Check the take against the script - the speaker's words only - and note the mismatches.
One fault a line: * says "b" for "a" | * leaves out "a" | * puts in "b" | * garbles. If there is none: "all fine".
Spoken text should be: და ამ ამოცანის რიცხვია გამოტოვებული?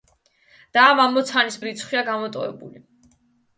all fine